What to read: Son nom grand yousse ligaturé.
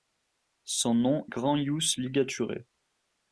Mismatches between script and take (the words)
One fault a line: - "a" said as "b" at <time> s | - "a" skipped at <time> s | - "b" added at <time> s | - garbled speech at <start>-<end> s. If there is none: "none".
none